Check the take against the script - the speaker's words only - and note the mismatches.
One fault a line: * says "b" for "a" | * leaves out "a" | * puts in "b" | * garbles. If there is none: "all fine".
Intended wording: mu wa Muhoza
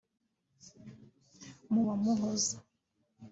all fine